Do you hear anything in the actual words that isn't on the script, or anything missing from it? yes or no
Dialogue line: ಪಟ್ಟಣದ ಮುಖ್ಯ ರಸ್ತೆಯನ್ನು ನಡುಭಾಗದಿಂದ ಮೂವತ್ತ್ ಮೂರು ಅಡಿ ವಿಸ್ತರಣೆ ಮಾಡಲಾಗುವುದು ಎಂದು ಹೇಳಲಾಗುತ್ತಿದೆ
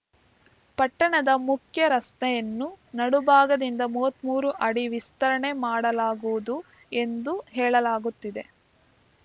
no